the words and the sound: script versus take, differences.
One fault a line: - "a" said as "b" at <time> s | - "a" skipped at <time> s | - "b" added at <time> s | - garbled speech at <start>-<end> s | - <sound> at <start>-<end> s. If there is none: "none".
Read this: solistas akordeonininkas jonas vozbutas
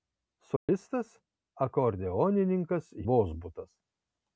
- dropout at 0.6-0.7 s
- "jonas" skipped at 2.9 s